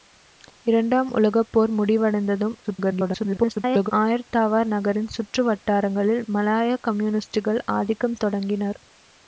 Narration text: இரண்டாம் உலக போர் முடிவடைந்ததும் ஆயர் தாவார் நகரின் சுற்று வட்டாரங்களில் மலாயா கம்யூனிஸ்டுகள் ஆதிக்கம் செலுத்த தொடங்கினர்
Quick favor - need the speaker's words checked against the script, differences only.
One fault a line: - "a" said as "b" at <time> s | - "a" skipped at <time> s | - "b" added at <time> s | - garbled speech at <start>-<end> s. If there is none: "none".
- garbled speech at 2.6-3.9 s
- "செலுத்த" skipped at 8.2 s